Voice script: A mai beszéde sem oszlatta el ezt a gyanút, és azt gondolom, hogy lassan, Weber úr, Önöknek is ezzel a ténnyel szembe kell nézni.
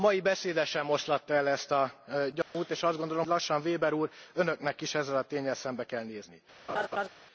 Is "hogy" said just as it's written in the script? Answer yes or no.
no